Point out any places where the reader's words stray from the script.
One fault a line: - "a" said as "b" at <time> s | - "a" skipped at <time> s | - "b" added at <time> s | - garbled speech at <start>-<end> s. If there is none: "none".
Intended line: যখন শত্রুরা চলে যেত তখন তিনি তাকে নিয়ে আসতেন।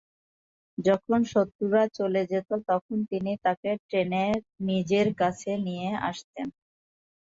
- "টেনে নিজের কাছে" added at 3.9 s